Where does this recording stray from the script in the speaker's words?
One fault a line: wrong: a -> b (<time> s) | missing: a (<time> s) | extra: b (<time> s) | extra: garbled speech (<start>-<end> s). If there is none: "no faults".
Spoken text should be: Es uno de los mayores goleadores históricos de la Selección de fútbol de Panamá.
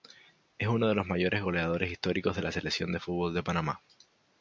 no faults